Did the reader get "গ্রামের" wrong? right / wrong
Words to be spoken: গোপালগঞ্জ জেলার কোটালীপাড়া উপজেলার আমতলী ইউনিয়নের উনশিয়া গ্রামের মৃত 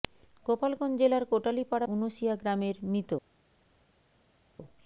right